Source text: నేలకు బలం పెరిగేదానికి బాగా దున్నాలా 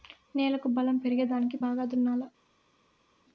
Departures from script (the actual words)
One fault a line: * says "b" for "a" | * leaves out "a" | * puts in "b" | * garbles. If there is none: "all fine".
all fine